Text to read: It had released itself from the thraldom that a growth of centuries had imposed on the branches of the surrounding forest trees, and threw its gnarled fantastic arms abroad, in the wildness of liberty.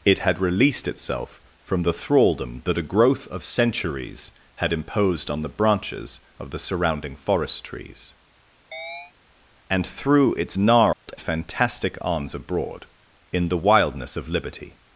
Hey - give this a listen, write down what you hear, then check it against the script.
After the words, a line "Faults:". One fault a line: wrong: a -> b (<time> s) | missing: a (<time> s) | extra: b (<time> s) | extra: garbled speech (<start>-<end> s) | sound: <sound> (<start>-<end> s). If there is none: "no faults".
It had released itself from the thraldom that a growth of centuries had imposed on the branches of the surrounding forest trees, and threw its gnarled fantastic arms abroad, in the wildness of liberty.
Faults:
sound: chirp (8.7-9.1 s)
sound: dropout (10.9-11.1 s)